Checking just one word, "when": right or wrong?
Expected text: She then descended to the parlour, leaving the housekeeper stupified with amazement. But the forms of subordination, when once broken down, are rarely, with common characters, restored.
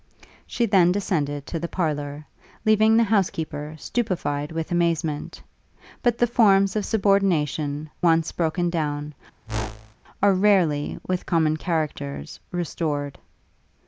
wrong